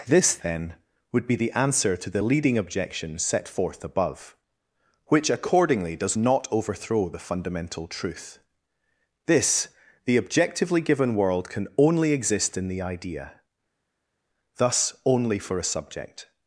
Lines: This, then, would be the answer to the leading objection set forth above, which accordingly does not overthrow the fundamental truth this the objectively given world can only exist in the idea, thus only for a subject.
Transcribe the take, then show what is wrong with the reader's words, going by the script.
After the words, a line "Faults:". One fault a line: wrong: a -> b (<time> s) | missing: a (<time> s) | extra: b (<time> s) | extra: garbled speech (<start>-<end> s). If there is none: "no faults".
This, then, would be the answer to the leading objection set forth above, which accordingly does not overthrow the fundamental truth this the objectively given world can only exist in the idea, thus only for a subject.
Faults:
no faults